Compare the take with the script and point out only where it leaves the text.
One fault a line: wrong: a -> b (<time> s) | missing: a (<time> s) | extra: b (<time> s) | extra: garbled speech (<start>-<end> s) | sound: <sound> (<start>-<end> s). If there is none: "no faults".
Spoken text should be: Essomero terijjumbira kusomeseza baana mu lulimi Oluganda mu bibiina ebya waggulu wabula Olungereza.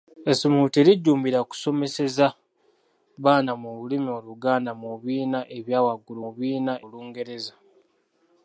wrong: wabula -> bibiina (6.3 s)